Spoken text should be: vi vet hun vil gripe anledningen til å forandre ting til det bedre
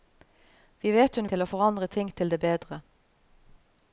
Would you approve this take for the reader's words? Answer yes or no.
no